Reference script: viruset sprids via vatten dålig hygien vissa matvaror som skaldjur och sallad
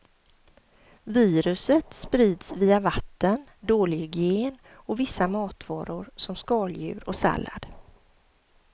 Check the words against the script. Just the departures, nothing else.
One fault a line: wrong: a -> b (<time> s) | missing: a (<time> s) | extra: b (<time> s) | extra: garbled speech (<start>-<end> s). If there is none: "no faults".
extra: och (4.7 s)